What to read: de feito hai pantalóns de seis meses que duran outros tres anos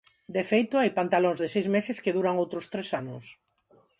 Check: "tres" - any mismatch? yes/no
no